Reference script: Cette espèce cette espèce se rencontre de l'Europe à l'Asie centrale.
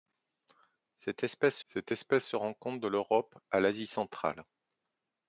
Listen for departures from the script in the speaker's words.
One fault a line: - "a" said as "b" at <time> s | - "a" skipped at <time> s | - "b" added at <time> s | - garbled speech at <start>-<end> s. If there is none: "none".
none